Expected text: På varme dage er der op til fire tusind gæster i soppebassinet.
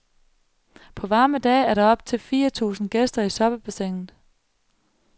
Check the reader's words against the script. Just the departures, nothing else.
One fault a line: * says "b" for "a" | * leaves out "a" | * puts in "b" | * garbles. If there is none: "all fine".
all fine